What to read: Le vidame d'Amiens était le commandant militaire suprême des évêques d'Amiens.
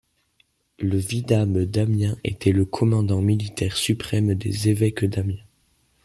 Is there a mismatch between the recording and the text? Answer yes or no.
no